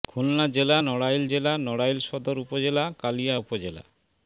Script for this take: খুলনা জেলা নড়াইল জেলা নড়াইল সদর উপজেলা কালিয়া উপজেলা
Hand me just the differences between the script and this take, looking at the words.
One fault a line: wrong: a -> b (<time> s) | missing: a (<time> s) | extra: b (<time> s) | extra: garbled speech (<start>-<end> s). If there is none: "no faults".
no faults